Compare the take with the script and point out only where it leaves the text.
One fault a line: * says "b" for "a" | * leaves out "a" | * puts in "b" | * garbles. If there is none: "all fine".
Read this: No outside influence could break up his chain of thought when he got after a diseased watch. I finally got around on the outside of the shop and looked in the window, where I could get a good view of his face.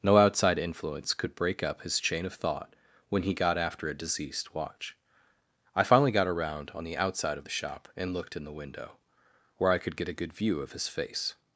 * says "deceased" for "diseased"